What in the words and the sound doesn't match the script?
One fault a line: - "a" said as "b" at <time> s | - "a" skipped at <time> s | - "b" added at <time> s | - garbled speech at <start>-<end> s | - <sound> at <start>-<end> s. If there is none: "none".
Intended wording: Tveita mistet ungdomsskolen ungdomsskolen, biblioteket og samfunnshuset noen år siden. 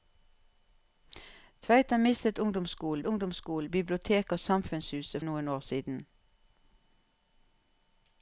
none